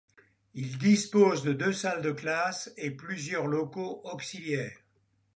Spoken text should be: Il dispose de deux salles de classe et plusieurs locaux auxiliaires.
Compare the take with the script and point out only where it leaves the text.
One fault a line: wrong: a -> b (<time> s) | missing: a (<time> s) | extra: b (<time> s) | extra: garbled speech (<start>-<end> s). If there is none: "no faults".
no faults